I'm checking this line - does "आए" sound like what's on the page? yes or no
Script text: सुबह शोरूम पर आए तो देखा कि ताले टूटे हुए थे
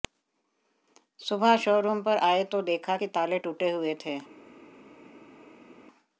yes